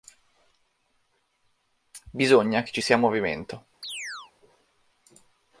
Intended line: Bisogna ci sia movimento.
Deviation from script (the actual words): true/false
true